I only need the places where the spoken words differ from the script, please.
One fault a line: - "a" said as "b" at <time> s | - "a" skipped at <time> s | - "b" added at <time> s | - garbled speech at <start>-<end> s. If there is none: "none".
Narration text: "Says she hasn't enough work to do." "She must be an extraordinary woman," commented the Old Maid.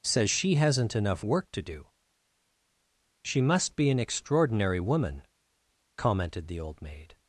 none